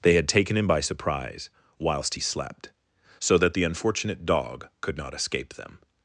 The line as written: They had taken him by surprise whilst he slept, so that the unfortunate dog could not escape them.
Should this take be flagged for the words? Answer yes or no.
no